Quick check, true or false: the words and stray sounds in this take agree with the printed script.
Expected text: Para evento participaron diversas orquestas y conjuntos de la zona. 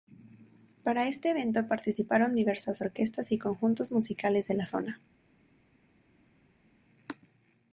false